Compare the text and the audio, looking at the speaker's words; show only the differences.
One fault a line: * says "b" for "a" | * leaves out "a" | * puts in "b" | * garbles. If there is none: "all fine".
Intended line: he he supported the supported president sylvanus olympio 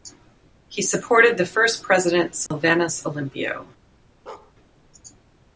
* leaves out "he"
* says "first" for "supported"